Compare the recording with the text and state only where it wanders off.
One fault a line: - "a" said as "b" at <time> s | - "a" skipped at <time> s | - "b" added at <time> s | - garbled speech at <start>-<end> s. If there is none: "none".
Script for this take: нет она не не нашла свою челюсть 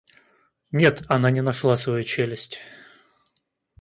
- "не" skipped at 1.4 s